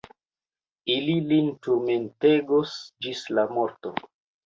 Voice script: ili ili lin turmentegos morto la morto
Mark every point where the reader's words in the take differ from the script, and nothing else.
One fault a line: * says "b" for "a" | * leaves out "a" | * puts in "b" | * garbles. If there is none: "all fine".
* leaves out "ili"
* says "ĝis" for "morto"